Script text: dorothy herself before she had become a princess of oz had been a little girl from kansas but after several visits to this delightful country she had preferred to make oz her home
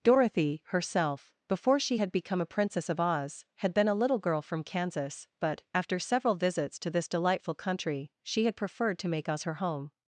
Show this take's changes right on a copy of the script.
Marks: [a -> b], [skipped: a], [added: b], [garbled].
dorothy herself before she had become a princess of oz had been a little girl from kansas but after several visits to this delightful country she had preferred to make oz her home